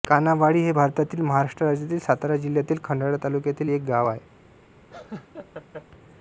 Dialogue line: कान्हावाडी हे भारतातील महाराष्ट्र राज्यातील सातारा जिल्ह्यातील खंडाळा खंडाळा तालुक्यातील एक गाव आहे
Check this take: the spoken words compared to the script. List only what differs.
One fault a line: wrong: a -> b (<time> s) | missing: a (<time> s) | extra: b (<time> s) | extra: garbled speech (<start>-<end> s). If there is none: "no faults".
missing: खंडाळा (3.2 s)